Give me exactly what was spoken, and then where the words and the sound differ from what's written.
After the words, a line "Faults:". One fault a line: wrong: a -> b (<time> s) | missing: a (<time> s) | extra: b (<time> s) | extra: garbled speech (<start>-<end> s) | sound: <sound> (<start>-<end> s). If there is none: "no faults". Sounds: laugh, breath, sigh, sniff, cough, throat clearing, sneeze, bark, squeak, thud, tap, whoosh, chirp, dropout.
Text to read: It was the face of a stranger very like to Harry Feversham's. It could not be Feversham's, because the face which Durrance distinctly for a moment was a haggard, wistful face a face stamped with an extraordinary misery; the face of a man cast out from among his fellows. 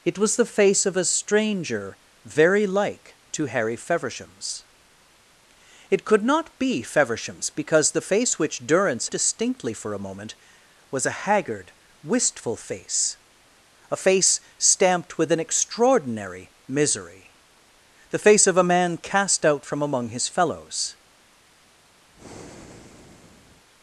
It was the face of a stranger very like to Harry Feversham's. It could not be Feversham's, because the face which Durrance distinctly for a moment was a haggard, wistful face a face stamped with an extraordinary misery; the face of a man cast out from among his fellows.
Faults:
sound: breath (22.1-23.7 s)